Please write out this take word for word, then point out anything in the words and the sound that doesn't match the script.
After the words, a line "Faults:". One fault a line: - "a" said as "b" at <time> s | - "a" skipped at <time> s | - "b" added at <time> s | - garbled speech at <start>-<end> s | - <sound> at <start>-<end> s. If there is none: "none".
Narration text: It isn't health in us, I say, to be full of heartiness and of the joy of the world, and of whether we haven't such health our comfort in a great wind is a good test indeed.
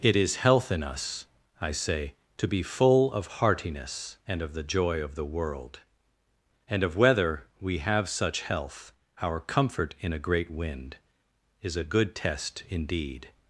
It is health in us, I say, to be full of heartiness and of the joy of the world, and of whether we have such health our comfort in a great wind is a good test indeed.
Faults:
- "isn't" said as "is" at 0.1 s
- "haven't" said as "have" at 7.8 s